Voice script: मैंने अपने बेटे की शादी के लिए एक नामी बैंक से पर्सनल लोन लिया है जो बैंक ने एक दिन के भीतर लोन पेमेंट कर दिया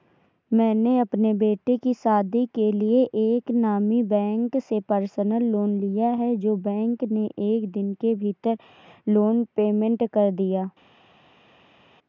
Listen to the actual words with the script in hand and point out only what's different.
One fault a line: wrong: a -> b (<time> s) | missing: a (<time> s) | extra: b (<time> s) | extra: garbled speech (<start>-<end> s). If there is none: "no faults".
no faults